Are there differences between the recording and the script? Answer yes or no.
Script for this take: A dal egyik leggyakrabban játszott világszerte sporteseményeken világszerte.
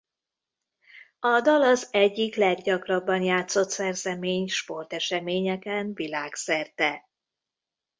yes